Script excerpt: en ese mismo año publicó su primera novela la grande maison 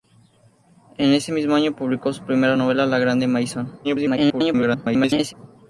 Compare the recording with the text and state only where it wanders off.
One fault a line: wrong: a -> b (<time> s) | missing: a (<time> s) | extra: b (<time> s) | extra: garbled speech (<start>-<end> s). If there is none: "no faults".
extra: garbled speech (3.8-5.3 s)